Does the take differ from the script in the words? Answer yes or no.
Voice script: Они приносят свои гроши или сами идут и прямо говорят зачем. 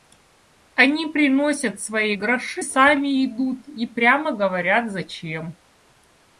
yes